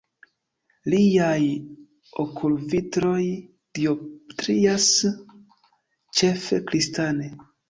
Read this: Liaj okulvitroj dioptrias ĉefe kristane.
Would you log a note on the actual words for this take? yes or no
no